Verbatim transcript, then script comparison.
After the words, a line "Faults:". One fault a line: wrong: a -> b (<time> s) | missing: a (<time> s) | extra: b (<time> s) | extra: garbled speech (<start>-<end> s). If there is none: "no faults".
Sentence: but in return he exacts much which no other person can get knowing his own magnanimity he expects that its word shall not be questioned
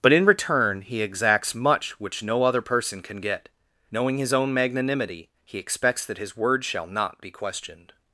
but in return he exacts much which no other person can get knowing his own magnanimity he expects that his word shall not be questioned
Faults:
wrong: its -> his (6.2 s)